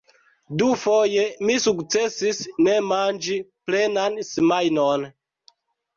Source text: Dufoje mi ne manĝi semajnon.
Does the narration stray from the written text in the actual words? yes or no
yes